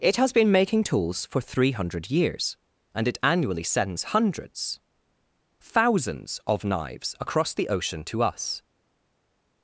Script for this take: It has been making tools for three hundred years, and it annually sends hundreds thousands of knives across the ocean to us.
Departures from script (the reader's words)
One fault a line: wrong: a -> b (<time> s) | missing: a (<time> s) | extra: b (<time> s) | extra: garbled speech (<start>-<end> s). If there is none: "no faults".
no faults